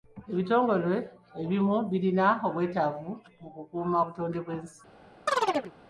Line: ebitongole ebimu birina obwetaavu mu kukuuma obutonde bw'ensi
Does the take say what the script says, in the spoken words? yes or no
yes